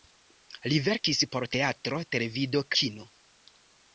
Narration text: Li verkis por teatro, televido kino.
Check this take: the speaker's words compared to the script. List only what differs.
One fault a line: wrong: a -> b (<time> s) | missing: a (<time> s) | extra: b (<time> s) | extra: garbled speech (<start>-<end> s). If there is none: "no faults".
no faults